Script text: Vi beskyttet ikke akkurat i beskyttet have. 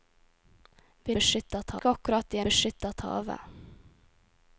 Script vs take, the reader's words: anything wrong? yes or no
no